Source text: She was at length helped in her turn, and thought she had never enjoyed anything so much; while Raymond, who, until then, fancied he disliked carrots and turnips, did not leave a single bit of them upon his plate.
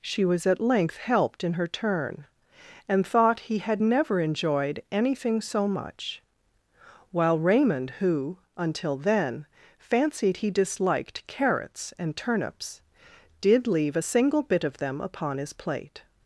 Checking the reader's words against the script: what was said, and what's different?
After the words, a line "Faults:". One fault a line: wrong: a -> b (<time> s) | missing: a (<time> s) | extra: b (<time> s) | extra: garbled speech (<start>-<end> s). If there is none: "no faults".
She was at length helped in her turn, and thought he had never enjoyed anything so much; while Raymond, who, until then, fancied he disliked carrots and turnips, did leave a single bit of them upon his plate.
Faults:
wrong: she -> he (3.4 s)
missing: not (13.7 s)